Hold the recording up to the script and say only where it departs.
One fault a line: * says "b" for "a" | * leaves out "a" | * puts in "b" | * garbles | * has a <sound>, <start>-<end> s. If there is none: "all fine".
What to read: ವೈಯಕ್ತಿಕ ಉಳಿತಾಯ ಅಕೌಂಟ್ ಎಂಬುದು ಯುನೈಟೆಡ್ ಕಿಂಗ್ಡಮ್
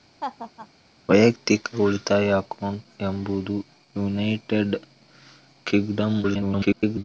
* has a laugh, 0.2-0.7 s
* garbles